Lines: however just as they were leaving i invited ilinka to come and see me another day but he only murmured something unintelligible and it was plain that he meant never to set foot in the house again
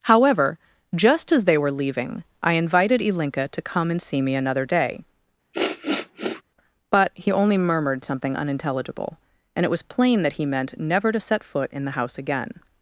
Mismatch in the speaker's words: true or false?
false